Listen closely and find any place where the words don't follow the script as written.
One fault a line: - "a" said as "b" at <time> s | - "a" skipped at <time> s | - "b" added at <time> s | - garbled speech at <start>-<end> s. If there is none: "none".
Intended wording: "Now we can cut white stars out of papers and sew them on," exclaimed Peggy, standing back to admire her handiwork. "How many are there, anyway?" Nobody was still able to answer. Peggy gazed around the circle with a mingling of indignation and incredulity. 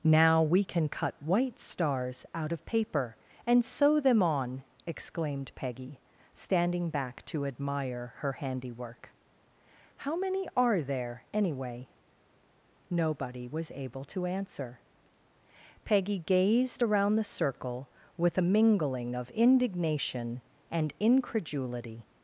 - "papers" said as "paper" at 2.6 s
- "still" skipped at 13.7 s